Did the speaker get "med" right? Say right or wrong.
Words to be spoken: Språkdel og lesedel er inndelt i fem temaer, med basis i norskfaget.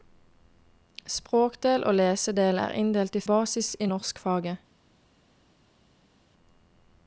wrong